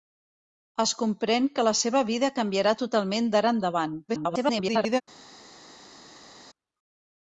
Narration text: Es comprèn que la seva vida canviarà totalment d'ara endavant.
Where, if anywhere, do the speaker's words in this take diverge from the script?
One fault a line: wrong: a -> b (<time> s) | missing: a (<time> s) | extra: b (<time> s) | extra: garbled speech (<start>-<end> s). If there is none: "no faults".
extra: garbled speech (4.1-5.0 s)